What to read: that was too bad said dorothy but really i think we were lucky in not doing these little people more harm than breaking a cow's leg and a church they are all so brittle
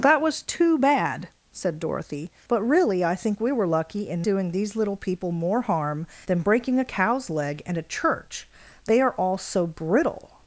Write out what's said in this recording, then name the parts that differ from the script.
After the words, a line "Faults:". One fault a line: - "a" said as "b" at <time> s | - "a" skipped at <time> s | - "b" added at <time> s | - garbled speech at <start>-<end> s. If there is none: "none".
that was too bad said dorothy but really i think we were lucky in doing these little people more harm than breaking a cow's leg and a church they are all so brittle
Faults:
- "not" skipped at 4.2 s